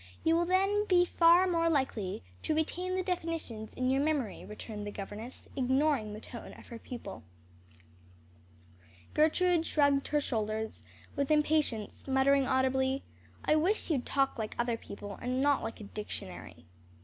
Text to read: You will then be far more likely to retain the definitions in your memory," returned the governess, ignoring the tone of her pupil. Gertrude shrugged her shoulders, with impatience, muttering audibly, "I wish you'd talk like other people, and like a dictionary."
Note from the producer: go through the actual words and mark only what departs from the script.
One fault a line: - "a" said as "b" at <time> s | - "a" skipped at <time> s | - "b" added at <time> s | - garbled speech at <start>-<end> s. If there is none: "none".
- "not" added at 15.4 s